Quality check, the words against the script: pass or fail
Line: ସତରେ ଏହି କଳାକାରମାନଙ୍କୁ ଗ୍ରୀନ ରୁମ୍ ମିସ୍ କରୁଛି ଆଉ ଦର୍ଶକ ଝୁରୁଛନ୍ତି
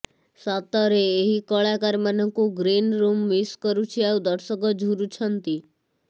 pass